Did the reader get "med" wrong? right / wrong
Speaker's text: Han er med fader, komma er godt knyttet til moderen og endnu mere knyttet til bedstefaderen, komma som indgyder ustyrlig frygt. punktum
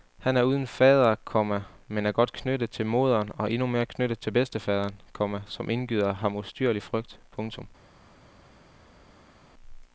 wrong